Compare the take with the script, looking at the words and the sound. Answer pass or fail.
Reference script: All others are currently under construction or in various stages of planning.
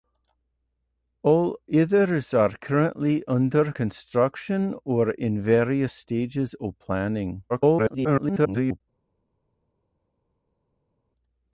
fail